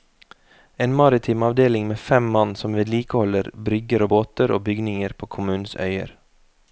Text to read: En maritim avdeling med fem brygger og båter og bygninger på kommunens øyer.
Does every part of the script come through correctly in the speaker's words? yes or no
no